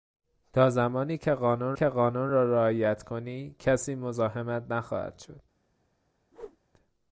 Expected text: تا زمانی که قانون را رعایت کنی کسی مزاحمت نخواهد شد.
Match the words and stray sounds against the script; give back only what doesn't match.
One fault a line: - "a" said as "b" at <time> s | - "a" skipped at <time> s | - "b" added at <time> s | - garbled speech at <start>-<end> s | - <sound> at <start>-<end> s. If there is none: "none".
- "که قانون" added at 1.7 s
- whoosh at 6.3-6.6 s